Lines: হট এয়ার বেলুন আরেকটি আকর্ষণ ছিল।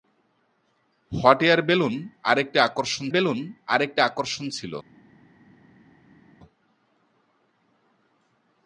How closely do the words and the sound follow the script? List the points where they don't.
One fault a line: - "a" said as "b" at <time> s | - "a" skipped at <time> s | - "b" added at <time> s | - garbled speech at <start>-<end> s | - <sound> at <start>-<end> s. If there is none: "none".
- "বেলুন আরেকটি আকর্ষণ" added at 3.1 s